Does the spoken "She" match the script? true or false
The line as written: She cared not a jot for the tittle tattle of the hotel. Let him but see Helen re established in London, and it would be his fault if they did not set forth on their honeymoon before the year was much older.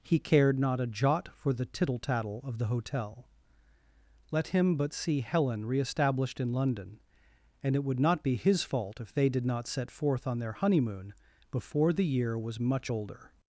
false